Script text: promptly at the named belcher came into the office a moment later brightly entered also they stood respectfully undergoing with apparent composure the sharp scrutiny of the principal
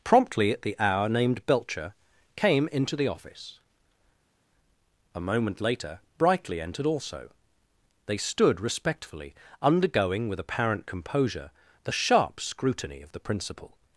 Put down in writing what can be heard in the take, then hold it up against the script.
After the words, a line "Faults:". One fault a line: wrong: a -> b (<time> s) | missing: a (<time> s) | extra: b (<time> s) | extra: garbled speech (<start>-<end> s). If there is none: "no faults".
promptly at the hour named belcher came into the office a moment later brightly entered also they stood respectfully undergoing with apparent composure the sharp scrutiny of the principal
Faults:
extra: hour (0.8 s)